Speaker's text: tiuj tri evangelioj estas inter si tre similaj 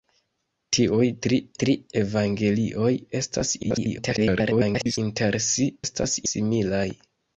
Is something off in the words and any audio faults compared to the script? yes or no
yes